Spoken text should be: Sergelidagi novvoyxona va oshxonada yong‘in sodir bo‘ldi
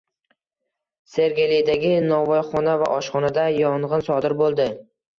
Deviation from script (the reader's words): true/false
false